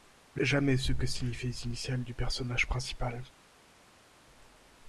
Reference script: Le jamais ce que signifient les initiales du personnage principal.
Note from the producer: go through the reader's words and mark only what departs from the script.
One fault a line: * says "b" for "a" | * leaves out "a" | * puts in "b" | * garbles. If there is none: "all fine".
all fine